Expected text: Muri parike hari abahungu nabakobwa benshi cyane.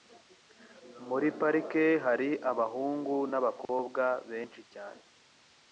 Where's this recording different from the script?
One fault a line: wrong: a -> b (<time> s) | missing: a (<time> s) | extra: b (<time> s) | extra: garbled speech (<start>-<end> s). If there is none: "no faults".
no faults